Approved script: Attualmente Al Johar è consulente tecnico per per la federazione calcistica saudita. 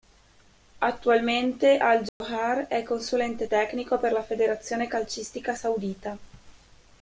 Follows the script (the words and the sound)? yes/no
no